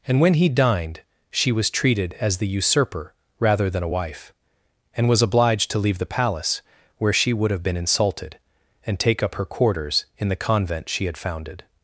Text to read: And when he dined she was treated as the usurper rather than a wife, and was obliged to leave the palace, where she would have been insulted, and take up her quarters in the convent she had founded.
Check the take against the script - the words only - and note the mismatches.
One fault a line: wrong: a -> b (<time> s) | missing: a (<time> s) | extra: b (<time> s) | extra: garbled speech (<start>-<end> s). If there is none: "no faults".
no faults